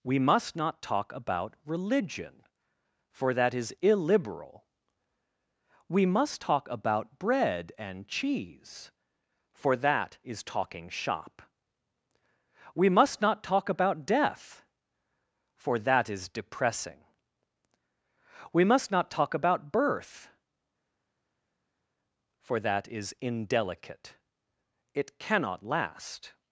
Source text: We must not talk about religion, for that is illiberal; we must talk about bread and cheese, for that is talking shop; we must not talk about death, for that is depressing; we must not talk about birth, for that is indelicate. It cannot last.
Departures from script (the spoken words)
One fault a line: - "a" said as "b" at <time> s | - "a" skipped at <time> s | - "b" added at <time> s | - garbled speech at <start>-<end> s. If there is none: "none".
none